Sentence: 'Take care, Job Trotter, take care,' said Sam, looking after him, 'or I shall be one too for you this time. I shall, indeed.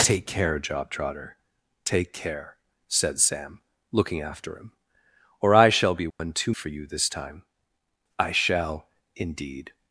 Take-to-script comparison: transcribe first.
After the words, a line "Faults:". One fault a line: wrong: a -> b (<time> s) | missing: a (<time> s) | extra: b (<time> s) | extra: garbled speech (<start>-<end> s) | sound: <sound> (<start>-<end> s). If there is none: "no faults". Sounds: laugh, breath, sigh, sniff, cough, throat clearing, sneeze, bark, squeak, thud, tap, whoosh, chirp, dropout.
'Take care, Job Trotter, take care,' said Sam, looking after him, 'or I shall be one too for you this time. I shall, indeed.
Faults:
sound: dropout (6.1-6.2 s)